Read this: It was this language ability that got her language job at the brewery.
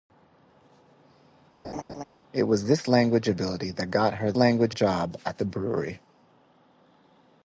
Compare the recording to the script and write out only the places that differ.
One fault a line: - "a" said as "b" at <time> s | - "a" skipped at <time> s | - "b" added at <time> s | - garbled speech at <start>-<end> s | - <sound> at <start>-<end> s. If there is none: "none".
- laugh at 1.6-2.0 s